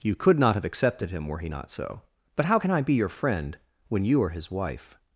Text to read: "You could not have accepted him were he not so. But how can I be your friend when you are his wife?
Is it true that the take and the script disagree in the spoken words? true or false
false